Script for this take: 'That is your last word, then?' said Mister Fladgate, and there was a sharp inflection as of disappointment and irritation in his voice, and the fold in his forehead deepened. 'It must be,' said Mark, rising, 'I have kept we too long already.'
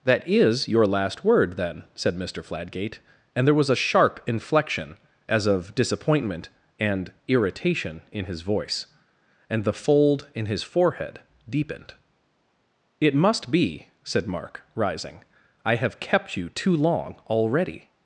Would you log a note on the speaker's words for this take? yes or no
yes